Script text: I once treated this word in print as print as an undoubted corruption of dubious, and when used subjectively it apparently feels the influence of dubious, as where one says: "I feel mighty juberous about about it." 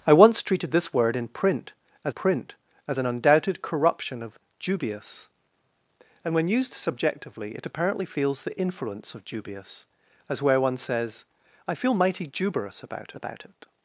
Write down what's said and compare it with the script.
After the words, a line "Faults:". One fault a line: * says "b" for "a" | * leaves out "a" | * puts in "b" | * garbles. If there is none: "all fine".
I once treated this word in print as print as an undoubted corruption of dubious, and when used subjectively it apparently feels the influence of dubious, as where one says: "I feel mighty juberous about about it."
Faults:
all fine